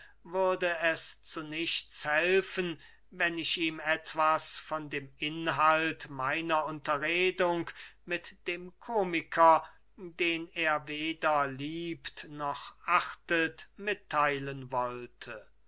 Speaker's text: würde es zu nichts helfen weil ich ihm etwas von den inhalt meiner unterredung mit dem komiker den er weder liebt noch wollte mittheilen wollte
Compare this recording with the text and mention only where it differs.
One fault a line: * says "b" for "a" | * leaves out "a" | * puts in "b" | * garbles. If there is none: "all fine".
* says "wenn" for "weil"
* says "dem" for "den"
* says "achtet" for "wollte"